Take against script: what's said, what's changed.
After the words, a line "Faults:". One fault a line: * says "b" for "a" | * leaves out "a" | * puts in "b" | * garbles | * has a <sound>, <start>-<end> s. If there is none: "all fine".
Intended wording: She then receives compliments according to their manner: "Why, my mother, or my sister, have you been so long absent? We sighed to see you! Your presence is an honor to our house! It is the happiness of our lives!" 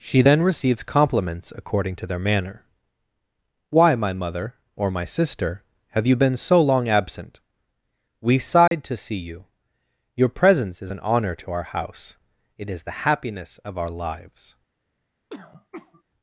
She then receives compliments according to their manner: "Why, my mother, or my sister, have you been so long absent? We sighed to see you! Your presence is an honor to our house! It is the happiness of our lives!"
Faults:
* has a dropout, 8.7-8.7 s
* has a throat clearing, 15.3-16.0 s